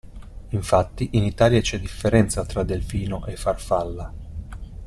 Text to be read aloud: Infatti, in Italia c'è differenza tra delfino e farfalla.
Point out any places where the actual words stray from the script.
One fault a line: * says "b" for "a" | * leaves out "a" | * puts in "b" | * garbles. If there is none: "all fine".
all fine